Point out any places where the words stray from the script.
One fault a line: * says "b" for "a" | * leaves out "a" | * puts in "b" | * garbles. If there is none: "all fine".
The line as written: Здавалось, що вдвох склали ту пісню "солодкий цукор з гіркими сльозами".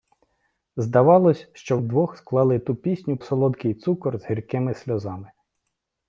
all fine